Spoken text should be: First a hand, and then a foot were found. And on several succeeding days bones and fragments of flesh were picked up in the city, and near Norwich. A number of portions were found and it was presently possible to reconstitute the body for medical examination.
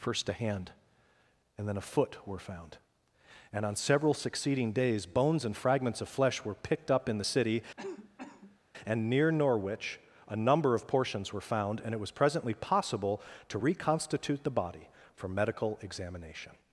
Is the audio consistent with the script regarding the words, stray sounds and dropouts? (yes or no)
no